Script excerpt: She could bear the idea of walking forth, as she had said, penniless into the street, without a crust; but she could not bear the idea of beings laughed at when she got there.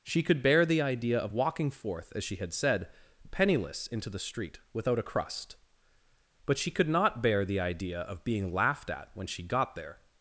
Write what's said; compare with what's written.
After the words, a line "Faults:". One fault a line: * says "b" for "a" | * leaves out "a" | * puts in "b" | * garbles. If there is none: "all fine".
She could bear the idea of walking forth, as she had said, penniless into the street, without a crust; but she could not bear the idea of being laughed at when she got there.
Faults:
* says "being" for "beings"